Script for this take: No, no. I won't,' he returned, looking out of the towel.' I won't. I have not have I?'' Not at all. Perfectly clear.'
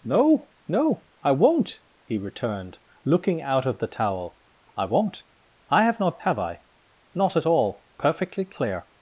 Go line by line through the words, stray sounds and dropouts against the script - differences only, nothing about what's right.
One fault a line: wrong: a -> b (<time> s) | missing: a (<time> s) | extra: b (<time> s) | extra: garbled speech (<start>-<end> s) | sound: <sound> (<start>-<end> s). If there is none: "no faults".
no faults